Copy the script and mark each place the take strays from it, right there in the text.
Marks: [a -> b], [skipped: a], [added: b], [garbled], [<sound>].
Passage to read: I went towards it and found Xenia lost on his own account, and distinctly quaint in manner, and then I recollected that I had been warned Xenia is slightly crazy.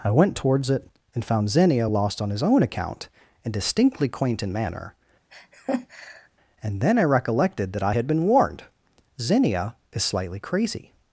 I went towards it and found Xenia lost on his own account, and distinctly quaint in manner, [laugh] and then I recollected that I had been warned Xenia is slightly crazy.